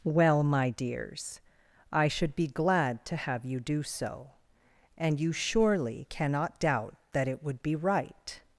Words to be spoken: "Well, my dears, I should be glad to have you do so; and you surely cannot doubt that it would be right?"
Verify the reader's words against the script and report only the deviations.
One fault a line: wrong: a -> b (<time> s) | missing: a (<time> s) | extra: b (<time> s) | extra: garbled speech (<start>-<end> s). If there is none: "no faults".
no faults